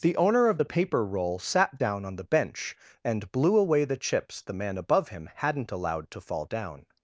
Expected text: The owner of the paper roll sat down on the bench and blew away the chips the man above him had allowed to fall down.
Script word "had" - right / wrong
wrong